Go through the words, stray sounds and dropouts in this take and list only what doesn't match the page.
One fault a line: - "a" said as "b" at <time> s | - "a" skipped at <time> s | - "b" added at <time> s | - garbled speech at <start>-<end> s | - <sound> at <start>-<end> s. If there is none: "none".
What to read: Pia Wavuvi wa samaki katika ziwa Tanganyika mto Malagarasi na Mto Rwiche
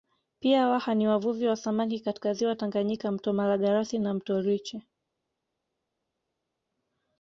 - "Waha ni" added at 0.7 s